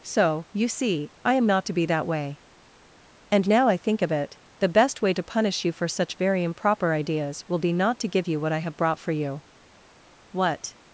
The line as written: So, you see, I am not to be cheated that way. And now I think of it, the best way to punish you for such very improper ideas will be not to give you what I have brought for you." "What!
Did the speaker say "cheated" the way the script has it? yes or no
no